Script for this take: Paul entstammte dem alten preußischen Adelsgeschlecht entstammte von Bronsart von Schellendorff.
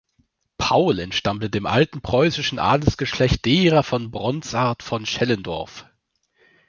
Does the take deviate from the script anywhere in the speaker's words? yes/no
yes